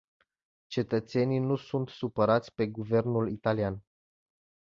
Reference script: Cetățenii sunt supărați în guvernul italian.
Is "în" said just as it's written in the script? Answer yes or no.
no